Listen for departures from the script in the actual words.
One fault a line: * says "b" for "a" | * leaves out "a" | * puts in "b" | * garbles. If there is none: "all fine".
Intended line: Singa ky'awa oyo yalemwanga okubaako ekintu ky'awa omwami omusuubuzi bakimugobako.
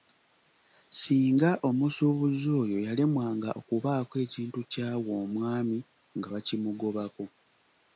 * says "omusuubuzi" for "ky'awa"
* says "nga" for "omusuubuzi"